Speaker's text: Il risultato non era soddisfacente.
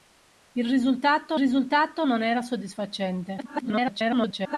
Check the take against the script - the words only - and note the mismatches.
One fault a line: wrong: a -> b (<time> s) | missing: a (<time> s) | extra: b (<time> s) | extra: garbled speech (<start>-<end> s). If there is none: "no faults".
extra: risultato (1.4 s)
extra: garbled speech (3.4-4.6 s)